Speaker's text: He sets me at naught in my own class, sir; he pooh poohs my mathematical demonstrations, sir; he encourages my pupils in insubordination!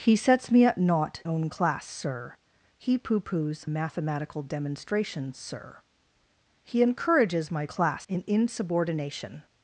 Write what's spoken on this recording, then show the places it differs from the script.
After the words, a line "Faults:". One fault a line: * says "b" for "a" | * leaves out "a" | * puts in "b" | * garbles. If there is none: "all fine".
He sets me at naught own class, sir; he pooh poohs mathematical demonstrations, sir; he encourages my class in insubordination!
Faults:
* leaves out "in my"
* leaves out "my"
* says "class" for "pupils"